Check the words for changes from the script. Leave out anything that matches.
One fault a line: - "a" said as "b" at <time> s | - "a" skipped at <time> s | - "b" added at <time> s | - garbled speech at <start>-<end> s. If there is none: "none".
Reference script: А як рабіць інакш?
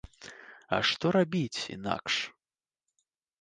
- "як" said as "што" at 0.9 s